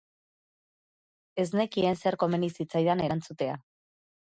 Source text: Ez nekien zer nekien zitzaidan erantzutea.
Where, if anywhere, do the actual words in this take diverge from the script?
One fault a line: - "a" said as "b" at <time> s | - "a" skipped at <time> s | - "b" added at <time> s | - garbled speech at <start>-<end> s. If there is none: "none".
- "nekien" said as "komeni" at 2.2 s